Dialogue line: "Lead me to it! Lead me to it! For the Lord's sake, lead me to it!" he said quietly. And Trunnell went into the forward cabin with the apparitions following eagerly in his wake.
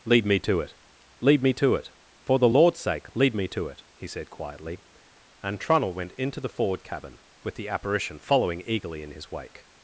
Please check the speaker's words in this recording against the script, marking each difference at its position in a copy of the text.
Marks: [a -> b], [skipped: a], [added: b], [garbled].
"Lead me to it! Lead me to it! For the Lord's sake, lead me to it!" he said quietly. And Trunnell went into the forward cabin with the [apparitions -> apparition] following eagerly in his wake.